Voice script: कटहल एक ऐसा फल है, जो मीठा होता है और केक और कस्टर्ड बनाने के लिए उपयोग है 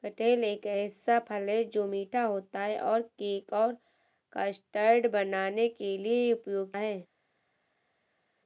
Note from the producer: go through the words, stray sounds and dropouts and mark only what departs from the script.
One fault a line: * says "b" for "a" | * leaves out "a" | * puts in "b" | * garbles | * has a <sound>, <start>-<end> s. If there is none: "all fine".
all fine